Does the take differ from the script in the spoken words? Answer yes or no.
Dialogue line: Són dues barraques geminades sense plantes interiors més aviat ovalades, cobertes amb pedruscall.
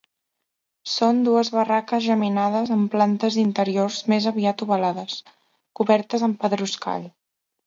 yes